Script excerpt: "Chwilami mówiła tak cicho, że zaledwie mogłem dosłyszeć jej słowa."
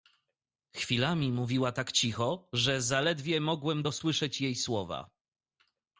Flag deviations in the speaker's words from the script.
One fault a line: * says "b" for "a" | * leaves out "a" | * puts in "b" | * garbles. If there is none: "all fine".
all fine